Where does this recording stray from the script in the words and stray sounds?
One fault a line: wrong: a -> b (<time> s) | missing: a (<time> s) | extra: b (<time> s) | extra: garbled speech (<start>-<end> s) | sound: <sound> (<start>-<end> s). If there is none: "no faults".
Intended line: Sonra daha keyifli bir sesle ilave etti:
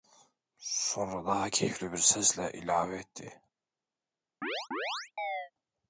sound: chirp (4.4-5.5 s)